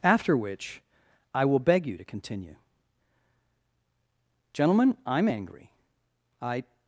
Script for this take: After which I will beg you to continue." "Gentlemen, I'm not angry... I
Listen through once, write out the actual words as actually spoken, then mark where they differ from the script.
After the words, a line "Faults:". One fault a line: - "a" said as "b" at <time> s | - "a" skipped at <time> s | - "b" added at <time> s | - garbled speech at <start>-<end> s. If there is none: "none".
After which I will beg you to continue." "Gentlemen, I'm angry... I
Faults:
- "not" skipped at 5.3 s